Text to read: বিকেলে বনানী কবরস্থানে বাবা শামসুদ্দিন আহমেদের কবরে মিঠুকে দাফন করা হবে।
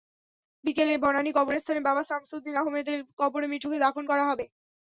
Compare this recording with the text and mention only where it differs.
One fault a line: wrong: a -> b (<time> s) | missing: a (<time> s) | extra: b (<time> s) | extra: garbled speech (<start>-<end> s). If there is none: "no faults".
no faults